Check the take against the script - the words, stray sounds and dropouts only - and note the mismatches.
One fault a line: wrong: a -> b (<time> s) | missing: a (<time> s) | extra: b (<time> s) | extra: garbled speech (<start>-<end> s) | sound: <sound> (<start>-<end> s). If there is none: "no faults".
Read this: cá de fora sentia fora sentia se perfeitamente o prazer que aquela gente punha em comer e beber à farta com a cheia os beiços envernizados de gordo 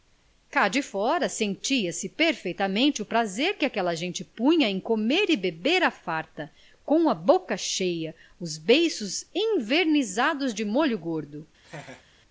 missing: fora sentia (1.9 s)
extra: boca (7.1 s)
extra: molho (10.7 s)
sound: laugh (11.6-12.0 s)